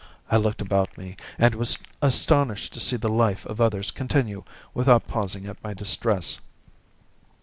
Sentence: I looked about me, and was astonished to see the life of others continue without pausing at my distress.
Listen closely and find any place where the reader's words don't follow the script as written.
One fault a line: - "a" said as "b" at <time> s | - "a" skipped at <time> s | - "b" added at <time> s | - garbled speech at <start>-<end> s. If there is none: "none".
none